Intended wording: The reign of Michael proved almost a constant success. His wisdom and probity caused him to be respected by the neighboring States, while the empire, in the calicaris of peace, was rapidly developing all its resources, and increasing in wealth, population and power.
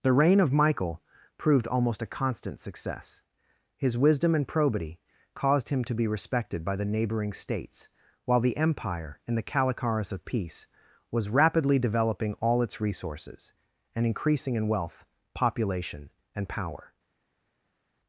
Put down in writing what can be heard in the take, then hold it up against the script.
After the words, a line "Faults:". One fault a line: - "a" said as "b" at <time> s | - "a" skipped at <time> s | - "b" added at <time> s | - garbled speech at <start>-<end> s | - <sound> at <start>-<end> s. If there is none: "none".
The reign of Michael proved almost a constant success. His wisdom and probity caused him to be respected by the neighboring States, while the empire, in the calicaris of peace, was rapidly developing all its resources, and increasing in wealth, population and power.
Faults:
none